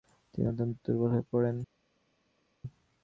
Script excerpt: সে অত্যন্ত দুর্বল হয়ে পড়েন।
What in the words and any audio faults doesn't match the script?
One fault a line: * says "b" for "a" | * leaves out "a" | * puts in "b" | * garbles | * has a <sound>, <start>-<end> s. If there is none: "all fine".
* says "তিনি" for "সে"